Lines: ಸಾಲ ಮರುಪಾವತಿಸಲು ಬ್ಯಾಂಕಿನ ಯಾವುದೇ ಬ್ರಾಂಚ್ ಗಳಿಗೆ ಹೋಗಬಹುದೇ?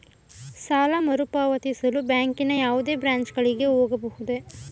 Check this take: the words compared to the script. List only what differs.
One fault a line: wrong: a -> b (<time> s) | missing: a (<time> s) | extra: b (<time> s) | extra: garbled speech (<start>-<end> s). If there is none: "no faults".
no faults